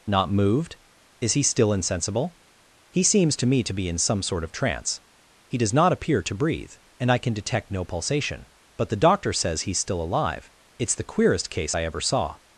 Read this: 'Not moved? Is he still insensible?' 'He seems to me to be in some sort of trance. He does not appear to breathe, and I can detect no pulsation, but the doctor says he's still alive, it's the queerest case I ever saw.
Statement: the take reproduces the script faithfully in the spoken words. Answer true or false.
true